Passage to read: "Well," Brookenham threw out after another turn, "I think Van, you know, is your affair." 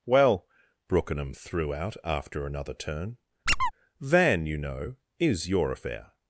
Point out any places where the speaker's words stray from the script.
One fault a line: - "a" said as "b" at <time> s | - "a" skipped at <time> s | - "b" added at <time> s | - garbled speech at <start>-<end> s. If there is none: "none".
- "I think" skipped at 3.2 s